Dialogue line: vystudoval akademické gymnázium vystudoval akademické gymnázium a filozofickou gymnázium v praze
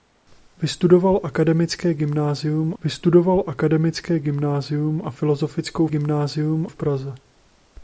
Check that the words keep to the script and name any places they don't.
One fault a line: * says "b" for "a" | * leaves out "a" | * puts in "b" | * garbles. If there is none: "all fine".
all fine